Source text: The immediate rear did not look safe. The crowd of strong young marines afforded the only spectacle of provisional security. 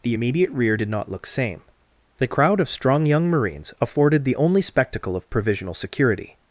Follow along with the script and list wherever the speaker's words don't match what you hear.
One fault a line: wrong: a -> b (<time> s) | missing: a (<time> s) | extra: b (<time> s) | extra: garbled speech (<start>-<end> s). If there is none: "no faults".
wrong: safe -> same (1.3 s)